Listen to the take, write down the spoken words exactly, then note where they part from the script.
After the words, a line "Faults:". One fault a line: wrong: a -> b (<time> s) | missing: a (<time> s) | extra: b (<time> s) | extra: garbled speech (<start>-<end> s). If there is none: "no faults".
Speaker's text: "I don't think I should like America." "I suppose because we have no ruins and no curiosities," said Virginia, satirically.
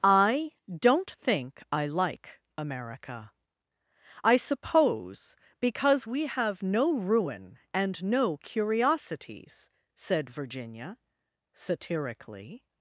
"I don't think I like America." "I suppose because we have no ruin and no curiosities," said Virginia, satirically.
Faults:
missing: should (1.9 s)
wrong: ruins -> ruin (6.9 s)